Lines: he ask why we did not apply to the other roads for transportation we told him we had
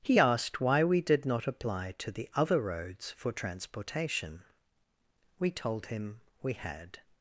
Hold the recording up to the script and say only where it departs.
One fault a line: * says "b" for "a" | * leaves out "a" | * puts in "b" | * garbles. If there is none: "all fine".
* says "asked" for "ask"